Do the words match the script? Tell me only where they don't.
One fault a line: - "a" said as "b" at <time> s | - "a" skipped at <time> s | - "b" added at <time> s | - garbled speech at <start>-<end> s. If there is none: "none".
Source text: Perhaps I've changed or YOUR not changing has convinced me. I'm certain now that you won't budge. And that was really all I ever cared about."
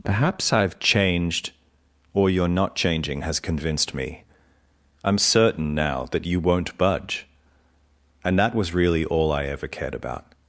none